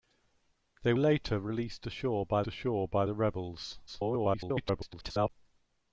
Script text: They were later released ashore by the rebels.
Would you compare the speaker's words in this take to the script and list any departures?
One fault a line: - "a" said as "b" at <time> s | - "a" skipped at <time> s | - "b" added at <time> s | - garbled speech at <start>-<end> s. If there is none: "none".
- "were" skipped at 0.9 s
- "ashore by" added at 2.5 s
- garbled speech at 3.9-5.3 s